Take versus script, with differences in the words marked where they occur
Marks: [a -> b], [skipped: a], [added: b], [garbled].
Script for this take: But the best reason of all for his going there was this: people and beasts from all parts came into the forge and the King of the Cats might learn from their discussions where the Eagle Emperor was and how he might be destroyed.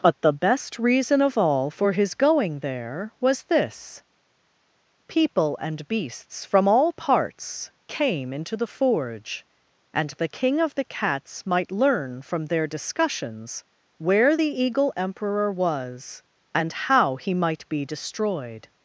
But the best reason of all for his going there was this: people and beasts from all parts came into the forge and the King of the Cats might learn from their discussions where the Eagle Emperor was and how he might be destroyed.